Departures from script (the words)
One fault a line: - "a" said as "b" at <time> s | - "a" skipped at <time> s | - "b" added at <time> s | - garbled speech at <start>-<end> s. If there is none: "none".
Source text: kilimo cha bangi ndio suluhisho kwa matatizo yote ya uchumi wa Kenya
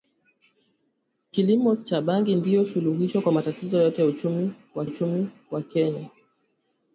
- "uchumi wa" added at 4.8 s